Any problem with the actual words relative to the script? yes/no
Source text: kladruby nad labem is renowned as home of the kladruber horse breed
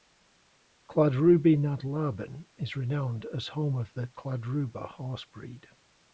no